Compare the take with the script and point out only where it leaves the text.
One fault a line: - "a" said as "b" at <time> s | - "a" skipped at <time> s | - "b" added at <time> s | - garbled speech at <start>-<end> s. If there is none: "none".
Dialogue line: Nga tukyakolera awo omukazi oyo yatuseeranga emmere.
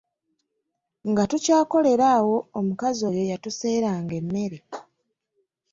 none